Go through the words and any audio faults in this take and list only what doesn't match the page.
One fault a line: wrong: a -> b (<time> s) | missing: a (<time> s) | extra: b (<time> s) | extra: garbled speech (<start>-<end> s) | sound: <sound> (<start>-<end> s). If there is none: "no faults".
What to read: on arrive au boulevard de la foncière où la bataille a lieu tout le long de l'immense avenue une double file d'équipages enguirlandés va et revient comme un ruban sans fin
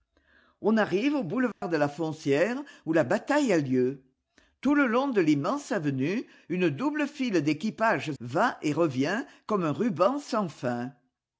sound: dropout (1.5-1.6 s)
missing: enguirlandés (8.2 s)